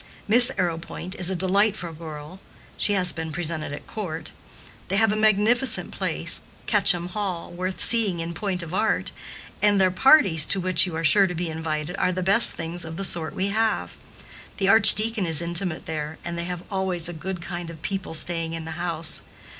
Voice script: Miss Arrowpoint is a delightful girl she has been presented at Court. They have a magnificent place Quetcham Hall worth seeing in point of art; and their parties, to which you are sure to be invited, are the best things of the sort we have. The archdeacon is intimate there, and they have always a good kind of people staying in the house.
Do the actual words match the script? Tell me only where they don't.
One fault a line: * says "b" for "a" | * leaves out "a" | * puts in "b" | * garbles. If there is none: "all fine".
all fine